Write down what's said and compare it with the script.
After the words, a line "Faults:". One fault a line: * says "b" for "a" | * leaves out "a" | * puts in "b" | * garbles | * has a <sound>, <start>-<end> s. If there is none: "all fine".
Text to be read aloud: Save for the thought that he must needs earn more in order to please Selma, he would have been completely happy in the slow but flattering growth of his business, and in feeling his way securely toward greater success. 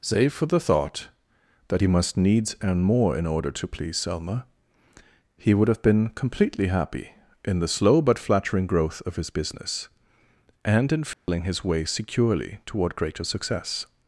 Save for the thought that he must needs earn more in order to please Selma, he would have been completely happy in the slow but flattering growth of his business, and in feeling his way securely toward greater success.
Faults:
* has a dropout, 11.1-11.3 s